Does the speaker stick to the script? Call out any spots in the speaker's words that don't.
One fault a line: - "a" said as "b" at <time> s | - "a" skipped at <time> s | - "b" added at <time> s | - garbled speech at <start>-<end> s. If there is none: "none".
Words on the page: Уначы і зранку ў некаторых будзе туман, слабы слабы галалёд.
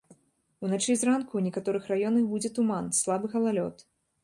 - "раёнах" added at 1.9 s
- "слабы" skipped at 3.3 s